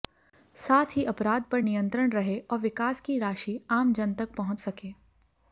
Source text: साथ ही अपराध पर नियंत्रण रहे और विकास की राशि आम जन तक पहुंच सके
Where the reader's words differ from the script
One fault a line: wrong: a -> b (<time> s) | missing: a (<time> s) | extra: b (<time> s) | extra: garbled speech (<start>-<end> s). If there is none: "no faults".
no faults